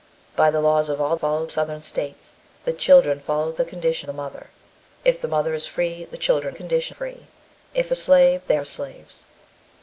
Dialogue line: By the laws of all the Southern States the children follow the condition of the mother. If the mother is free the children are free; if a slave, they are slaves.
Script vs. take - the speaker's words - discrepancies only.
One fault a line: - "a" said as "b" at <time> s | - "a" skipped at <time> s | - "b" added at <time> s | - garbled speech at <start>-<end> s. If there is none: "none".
- "the" said as "follow" at 1.1 s
- "of" skipped at 4.1 s
- "are" said as "condition" at 6.5 s